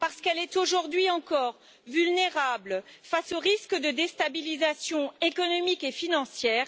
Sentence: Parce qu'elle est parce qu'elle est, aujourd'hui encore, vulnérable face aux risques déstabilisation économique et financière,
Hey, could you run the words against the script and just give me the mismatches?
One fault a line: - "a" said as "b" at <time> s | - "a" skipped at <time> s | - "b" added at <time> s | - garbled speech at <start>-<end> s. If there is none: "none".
- "parce qu'elle est" skipped at 0.6 s
- "de" added at 3.8 s